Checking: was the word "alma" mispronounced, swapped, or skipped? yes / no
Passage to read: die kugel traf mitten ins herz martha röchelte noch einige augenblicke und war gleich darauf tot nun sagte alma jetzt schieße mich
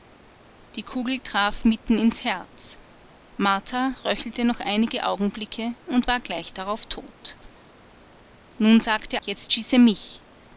yes